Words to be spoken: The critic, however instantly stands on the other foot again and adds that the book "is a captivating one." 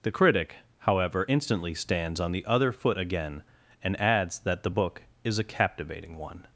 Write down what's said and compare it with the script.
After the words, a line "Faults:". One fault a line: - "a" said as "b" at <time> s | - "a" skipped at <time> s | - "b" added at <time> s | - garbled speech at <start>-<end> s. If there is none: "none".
The critic, however instantly stands on the other foot again and adds that the book "is a captivating one."
Faults:
none